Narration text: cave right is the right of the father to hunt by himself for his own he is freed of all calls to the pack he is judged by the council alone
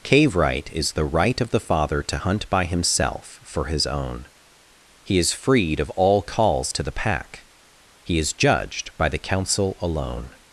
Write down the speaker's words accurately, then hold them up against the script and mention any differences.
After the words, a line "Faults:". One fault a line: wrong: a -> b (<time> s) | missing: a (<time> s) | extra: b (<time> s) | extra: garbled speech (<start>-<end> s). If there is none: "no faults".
cave right is the right of the father to hunt by himself for his own he is freed of all calls to the pack he is judged by the council alone
Faults:
no faults